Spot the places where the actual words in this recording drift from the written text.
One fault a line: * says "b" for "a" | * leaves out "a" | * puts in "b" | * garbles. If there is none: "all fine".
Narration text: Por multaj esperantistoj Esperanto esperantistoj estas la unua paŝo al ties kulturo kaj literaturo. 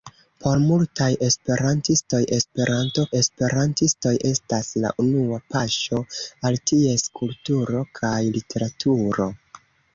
all fine